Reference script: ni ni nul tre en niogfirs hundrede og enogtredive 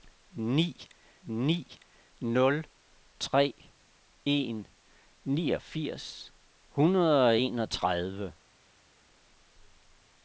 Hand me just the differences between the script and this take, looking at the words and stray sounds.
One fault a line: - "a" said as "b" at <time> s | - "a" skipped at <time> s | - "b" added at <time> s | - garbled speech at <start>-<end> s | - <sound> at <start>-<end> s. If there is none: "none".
none